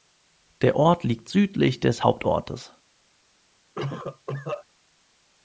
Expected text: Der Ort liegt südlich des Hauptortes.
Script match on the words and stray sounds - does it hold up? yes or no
no